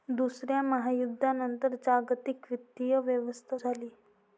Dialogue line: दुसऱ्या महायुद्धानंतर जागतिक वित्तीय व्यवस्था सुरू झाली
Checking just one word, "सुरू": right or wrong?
wrong